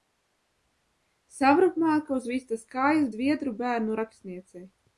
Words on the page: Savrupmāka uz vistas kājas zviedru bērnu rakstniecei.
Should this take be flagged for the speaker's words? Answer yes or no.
no